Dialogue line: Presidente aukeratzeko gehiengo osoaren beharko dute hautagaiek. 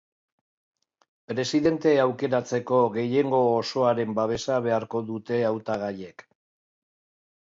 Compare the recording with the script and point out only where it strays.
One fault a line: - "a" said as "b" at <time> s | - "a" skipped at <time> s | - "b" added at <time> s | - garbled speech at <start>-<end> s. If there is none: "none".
- "babesa" added at 4.2 s